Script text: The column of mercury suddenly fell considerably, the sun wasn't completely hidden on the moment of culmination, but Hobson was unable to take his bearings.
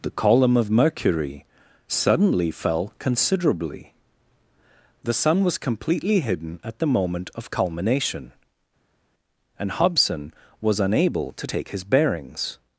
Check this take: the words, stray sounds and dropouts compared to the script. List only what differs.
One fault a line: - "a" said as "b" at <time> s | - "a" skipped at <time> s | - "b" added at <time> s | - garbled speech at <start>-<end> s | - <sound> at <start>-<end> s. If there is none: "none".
- "wasn't" said as "was" at 5.4 s
- "on" said as "at" at 6.6 s
- "but" said as "and" at 9.6 s